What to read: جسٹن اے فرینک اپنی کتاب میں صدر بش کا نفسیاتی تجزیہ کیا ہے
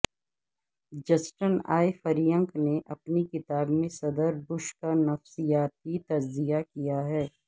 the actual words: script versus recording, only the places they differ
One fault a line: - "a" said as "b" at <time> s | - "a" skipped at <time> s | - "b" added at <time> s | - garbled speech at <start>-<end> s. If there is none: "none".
- "نے" added at 2.6 s